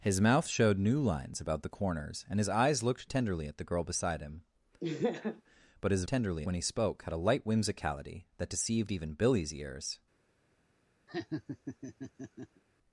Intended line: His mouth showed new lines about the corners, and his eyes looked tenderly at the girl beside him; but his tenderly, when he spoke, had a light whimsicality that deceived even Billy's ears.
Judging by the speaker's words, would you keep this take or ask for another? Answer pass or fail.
pass